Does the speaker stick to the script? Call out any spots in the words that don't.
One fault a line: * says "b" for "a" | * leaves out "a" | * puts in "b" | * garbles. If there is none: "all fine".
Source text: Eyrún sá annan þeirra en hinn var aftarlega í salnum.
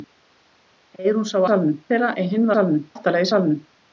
* says "salnum" for "annan"
* says "salnum" for "var"